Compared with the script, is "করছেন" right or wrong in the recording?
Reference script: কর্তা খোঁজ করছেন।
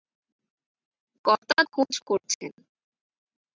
right